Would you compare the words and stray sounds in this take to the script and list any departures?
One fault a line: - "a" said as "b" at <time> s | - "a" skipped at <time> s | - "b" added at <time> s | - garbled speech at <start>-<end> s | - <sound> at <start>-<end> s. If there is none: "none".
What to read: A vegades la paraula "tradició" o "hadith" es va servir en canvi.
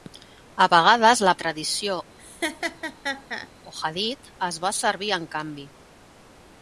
- "paraula" skipped at 1.3 s
- laugh at 2.2-3.5 s